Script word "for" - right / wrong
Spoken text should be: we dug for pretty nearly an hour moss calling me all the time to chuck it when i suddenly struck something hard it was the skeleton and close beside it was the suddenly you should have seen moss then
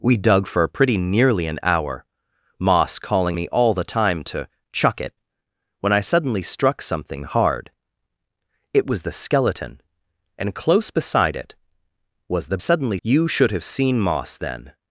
right